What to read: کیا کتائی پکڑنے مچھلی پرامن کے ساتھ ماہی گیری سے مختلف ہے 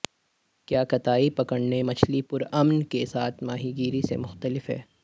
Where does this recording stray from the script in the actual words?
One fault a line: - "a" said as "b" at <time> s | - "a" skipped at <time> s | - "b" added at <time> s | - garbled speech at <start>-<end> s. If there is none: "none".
none